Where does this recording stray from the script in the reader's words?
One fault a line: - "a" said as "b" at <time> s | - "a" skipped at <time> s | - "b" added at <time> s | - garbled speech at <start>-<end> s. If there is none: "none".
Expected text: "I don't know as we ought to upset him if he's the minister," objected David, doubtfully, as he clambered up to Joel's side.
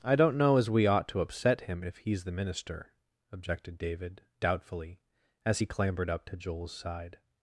none